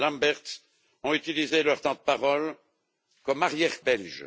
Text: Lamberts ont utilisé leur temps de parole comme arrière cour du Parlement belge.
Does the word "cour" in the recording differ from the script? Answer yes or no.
yes